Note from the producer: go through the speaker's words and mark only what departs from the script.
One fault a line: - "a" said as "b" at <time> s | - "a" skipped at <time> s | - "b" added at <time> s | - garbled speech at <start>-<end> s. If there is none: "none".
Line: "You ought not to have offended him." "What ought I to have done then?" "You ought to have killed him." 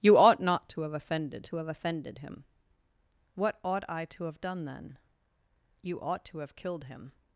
- "to have offended" added at 1.4 s